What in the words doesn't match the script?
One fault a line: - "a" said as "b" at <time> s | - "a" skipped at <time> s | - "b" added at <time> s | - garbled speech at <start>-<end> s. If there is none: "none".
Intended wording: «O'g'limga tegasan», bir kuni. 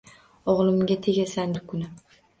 none